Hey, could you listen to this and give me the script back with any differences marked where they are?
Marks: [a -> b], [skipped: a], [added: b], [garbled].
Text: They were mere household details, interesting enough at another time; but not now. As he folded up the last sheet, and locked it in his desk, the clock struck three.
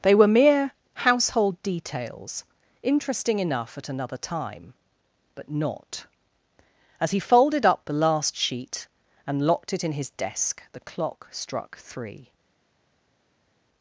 They were mere household details, interesting enough at another time; but not [skipped: now.] As he folded up the last sheet, and locked it in his desk, the clock struck three.